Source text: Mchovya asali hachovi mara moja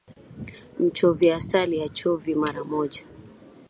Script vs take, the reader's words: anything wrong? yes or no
no